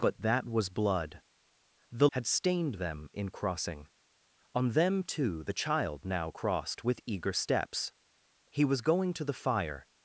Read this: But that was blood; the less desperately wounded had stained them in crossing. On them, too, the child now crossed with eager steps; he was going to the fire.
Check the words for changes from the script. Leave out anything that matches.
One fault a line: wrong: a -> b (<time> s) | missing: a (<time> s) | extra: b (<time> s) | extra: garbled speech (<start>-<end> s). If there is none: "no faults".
missing: less desperately wounded (2.1 s)